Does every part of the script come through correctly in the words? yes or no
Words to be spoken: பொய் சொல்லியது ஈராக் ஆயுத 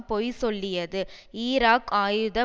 yes